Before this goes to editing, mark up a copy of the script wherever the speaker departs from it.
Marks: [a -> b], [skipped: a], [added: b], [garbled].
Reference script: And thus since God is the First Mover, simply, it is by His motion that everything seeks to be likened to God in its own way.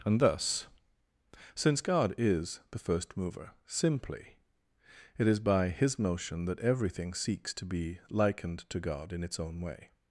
And thus since God is the First Mover, simply, it is by His motion that everything seeks to be likened to God in its own way.